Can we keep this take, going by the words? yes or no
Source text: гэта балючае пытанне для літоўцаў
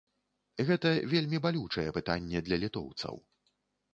no